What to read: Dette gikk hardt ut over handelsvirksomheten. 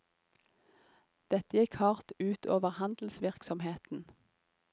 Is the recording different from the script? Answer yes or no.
no